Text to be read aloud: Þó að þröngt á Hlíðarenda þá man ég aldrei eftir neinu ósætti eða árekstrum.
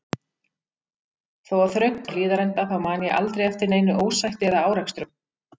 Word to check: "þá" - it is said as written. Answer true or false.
true